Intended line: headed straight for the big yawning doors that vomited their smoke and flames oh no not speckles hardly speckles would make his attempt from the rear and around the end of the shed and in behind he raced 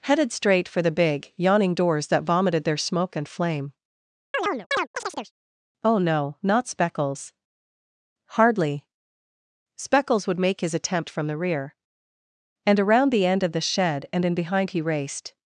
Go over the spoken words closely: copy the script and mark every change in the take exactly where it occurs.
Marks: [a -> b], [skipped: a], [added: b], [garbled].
headed straight for the big yawning doors that vomited their smoke and [flames -> flame] oh no not speckles hardly speckles would make his attempt from the rear and around the end of the shed and in behind he raced